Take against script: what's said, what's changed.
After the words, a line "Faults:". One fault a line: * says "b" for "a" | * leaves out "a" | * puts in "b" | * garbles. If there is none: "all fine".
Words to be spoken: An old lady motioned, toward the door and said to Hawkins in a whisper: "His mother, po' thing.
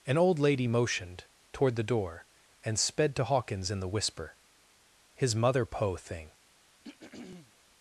An old lady motioned, toward the door and sped to Hawkins in the whisper: "His mother, po' thing.
Faults:
* says "sped" for "said"
* says "the" for "a"